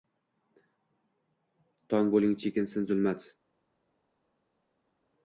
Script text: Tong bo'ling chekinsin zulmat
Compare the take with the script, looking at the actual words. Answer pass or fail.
pass